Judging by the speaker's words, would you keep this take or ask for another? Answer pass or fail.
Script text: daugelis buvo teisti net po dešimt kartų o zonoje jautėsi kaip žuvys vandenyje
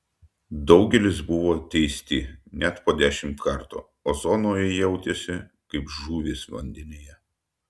pass